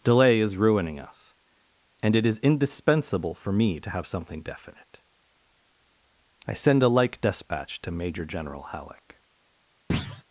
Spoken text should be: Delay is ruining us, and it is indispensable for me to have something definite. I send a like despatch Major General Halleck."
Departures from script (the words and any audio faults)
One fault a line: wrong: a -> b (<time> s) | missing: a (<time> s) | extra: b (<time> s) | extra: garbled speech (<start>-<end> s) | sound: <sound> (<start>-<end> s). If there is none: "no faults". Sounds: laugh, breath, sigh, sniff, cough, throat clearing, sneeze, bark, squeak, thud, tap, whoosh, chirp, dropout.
extra: to (7.8 s)
sound: thud (9.9-10.2 s)